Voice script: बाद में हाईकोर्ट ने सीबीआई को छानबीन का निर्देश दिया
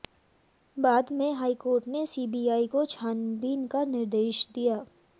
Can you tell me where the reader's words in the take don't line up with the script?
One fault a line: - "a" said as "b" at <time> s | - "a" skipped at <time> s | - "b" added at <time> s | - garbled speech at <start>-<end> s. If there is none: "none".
none